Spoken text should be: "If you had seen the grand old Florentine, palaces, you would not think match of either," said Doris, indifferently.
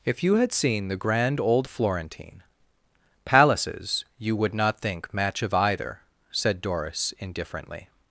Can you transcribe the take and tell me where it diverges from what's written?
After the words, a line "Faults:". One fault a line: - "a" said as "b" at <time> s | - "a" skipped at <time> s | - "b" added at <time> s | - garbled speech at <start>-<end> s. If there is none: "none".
"If you had seen the grand old Florentine, palaces, you would not think match of either," said Doris, indifferently.
Faults:
none